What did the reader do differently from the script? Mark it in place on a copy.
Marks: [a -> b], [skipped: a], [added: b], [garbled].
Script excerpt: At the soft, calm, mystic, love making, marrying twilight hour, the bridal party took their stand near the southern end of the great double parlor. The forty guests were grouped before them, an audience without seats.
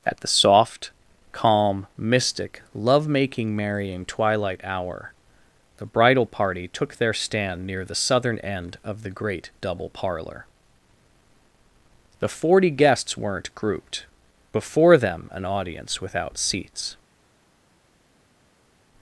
At the soft, calm, mystic, love making, marrying twilight hour, the bridal party took their stand near the southern end of the great double parlor. The forty guests [were -> weren't] grouped before them, an audience without seats.